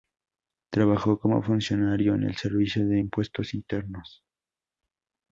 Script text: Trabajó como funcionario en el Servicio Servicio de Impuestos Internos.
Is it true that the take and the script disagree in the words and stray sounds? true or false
true